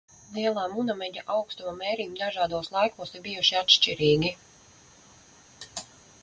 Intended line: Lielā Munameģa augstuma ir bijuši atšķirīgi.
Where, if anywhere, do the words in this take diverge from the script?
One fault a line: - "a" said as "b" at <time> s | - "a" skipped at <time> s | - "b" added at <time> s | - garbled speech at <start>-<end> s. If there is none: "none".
- "mērījumi dažādos laikos" added at 1.8 s